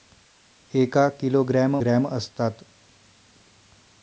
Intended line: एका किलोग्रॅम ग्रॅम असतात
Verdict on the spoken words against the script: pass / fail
pass